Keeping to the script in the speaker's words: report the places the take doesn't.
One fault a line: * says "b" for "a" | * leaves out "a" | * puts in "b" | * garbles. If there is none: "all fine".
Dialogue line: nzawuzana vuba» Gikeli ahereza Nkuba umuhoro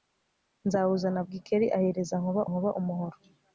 * leaves out "vuba"
* puts in "Nkuba"